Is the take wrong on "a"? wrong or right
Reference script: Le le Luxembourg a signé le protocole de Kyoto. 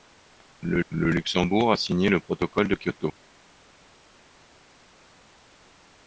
right